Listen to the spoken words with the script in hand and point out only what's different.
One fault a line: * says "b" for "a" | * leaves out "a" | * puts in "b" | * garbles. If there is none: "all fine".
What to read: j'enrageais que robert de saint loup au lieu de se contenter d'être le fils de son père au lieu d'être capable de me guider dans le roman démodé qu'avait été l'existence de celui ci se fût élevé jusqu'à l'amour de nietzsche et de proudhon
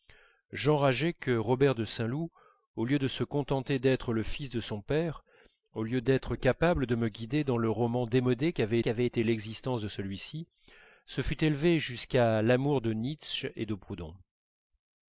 * puts in "qu'avait"